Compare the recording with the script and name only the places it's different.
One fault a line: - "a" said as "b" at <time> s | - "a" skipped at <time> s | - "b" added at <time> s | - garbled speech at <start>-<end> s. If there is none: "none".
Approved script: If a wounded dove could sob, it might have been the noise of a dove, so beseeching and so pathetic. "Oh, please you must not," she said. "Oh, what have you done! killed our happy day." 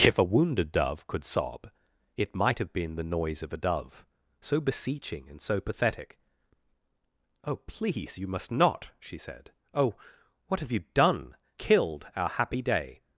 none